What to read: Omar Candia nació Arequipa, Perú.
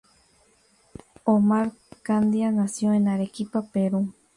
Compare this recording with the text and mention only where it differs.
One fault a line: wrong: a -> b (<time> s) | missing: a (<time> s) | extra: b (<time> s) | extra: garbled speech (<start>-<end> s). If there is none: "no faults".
extra: en (2.9 s)